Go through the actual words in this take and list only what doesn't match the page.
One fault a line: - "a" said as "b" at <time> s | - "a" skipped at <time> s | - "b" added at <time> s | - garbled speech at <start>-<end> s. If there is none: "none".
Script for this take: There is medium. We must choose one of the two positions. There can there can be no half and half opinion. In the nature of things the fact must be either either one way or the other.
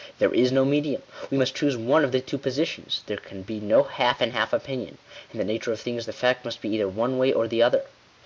- "no" added at 0.5 s
- "there can" skipped at 3.4 s
- "either" skipped at 6.9 s